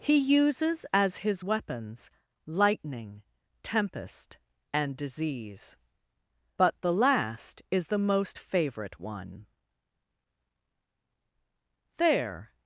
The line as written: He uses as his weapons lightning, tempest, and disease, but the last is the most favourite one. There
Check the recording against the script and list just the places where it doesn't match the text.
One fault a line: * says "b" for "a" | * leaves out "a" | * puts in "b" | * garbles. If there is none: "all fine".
all fine